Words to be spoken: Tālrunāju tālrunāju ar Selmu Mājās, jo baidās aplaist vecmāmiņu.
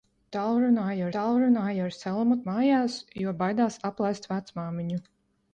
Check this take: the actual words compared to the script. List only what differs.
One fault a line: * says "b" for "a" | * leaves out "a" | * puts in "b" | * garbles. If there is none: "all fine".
all fine